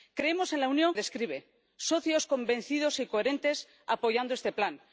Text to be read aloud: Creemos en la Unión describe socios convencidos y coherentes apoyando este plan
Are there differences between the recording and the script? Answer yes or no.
no